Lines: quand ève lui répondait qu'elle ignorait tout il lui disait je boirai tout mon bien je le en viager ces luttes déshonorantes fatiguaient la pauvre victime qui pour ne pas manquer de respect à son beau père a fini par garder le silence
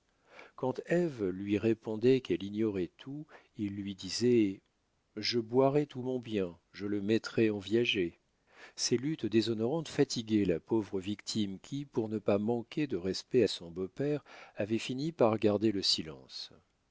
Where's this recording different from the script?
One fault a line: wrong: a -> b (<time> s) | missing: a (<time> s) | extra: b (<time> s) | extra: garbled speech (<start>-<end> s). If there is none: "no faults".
extra: mettrai (7.0 s)
wrong: a -> avait (14.5 s)